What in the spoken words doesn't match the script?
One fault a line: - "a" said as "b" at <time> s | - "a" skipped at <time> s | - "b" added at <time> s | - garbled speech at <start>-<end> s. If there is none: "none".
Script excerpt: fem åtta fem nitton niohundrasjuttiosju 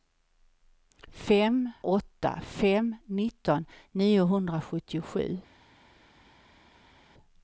none